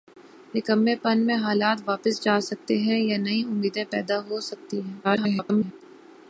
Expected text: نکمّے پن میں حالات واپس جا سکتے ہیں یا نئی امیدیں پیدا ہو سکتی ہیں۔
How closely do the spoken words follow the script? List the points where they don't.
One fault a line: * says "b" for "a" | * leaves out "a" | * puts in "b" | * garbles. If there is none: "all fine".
* garbles